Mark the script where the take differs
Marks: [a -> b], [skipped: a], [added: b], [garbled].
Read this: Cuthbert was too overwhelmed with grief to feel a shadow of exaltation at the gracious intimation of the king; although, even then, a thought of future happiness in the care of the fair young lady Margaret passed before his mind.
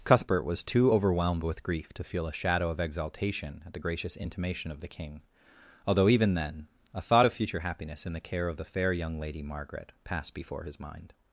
Cuthbert was too overwhelmed with grief to feel a shadow of exaltation at the gracious intimation of the king; although, even then, a thought of future happiness in the care of the fair young lady Margaret passed before his mind.